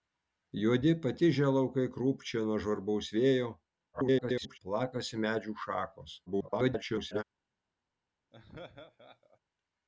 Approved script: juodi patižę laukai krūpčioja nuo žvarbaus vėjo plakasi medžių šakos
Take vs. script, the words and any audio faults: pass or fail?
fail